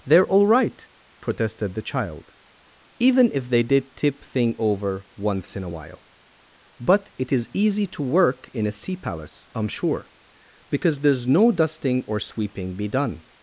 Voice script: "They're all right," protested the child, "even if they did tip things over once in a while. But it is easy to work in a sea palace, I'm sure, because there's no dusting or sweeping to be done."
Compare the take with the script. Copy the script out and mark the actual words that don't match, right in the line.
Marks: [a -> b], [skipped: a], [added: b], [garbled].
"They're all right," protested the child, "even if they did tip [things -> thing] over once in a while. But it is easy to work in a sea palace, I'm sure, because there's no dusting or sweeping [skipped: to] be done."